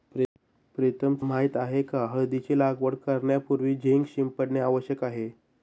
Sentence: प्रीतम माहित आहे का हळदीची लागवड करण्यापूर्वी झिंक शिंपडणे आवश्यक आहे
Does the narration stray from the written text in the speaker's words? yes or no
no